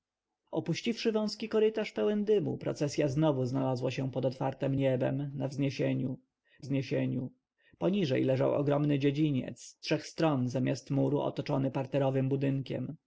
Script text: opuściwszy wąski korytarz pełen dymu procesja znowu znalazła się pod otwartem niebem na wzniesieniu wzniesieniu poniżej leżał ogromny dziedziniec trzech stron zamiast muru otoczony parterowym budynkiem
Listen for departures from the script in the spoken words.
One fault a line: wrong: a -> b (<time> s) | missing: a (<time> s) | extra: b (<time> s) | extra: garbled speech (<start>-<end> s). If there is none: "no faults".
no faults